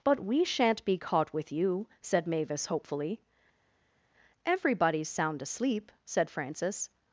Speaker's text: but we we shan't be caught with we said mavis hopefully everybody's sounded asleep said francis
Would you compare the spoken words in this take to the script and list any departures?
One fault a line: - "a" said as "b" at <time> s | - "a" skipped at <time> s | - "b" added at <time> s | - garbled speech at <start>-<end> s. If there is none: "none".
- "we" skipped at 0.4 s
- "we" said as "you" at 1.5 s
- "sounded" said as "sound" at 5.1 s